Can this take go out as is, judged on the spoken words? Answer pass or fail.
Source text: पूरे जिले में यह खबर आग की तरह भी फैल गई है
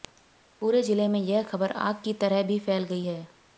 pass